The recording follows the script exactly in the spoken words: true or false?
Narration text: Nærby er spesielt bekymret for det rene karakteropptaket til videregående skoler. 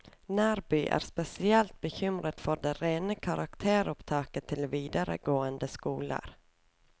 true